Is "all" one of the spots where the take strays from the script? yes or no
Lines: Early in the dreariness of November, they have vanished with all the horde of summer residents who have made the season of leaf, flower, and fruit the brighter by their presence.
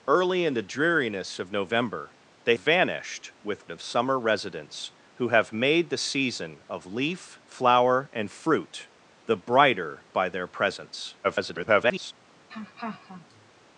yes